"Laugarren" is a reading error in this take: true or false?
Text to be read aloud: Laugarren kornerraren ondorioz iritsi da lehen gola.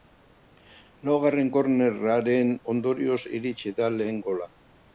false